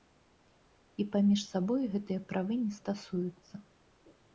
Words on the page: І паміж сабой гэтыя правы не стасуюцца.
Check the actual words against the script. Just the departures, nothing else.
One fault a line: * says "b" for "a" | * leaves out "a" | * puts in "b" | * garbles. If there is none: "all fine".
all fine